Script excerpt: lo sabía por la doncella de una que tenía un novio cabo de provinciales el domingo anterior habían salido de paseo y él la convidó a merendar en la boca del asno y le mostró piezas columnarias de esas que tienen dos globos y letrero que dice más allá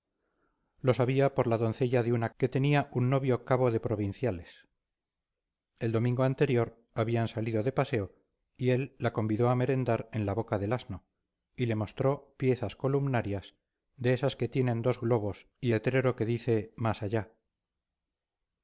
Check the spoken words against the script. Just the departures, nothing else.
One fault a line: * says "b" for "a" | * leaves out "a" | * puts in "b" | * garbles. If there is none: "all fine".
all fine